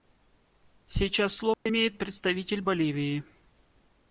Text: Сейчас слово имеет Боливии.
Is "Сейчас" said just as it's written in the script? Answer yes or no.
yes